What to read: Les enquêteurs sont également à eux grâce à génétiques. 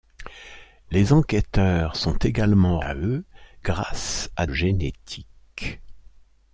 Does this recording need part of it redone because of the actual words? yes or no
no